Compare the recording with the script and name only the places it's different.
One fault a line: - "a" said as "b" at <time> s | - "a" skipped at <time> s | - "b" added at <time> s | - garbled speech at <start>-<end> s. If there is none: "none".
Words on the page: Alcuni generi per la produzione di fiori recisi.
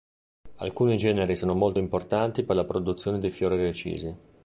- "sono molto importanti" added at 1.4 s